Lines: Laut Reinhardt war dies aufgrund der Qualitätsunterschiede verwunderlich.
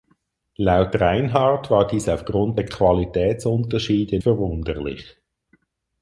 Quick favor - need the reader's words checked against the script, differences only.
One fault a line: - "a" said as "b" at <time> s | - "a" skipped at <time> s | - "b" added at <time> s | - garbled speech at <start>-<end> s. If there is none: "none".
none